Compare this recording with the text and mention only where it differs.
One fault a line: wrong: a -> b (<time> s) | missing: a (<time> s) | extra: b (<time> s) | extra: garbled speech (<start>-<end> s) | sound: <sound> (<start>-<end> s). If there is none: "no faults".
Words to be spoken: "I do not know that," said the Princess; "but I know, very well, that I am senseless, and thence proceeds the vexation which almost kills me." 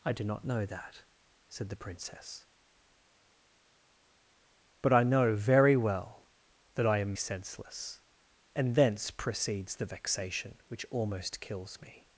no faults